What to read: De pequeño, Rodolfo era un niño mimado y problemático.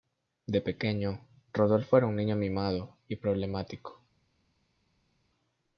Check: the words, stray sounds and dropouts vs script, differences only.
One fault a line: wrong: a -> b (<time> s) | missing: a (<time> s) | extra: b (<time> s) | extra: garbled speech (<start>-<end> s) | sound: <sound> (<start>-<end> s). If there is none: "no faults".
no faults